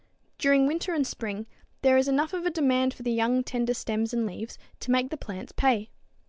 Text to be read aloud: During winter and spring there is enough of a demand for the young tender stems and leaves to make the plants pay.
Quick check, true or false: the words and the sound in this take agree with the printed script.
true